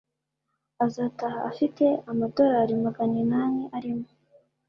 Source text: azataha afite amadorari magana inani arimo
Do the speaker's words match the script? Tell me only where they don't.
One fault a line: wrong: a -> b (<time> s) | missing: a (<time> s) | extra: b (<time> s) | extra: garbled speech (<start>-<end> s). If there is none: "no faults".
no faults